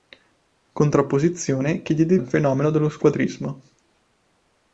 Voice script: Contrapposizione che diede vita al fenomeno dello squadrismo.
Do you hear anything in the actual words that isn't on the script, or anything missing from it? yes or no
yes